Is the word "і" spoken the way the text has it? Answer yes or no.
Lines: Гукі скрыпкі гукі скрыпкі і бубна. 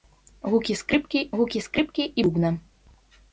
yes